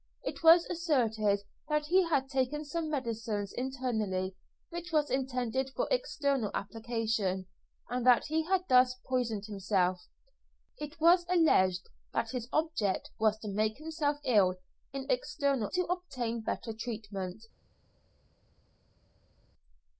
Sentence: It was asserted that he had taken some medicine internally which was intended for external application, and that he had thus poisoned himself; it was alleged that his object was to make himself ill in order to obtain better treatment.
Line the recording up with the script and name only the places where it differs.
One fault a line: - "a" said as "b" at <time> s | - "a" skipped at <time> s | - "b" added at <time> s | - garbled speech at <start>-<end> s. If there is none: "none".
- "order" said as "external" at 15.1 s